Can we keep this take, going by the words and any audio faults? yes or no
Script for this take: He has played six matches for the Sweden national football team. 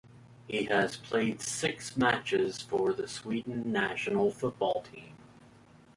yes